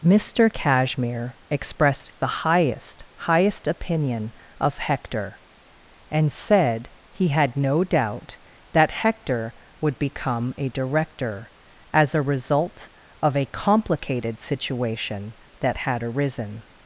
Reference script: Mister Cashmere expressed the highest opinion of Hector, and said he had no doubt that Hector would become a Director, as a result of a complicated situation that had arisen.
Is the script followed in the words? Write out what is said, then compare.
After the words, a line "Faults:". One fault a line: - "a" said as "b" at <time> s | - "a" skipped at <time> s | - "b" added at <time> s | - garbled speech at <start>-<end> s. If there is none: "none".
Mister Cashmere expressed the highest highest opinion of Hector, and said he had no doubt that Hector would become a Director, as a result of a complicated situation that had arisen.
Faults:
- "highest" added at 3.2 s